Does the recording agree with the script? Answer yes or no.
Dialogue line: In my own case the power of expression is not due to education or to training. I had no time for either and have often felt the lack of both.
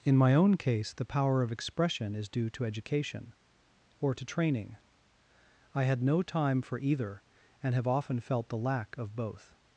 no